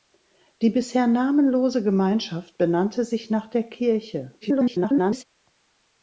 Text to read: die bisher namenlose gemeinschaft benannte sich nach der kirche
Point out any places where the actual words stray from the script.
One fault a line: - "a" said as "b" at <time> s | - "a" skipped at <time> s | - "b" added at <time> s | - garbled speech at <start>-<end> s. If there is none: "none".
- garbled speech at 4.4-5.2 s